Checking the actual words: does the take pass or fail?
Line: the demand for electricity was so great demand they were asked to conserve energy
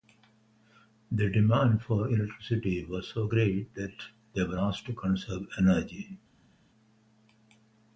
fail